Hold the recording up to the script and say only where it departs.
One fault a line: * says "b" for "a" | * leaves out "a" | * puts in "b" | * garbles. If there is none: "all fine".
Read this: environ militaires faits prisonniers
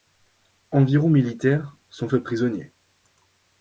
* puts in "sont"